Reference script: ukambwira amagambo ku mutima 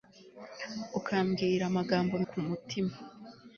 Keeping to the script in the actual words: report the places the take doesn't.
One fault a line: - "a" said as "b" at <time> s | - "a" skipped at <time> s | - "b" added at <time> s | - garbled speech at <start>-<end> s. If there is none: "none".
none